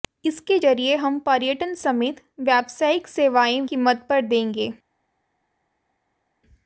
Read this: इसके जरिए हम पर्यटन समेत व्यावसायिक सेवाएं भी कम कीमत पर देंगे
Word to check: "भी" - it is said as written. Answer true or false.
false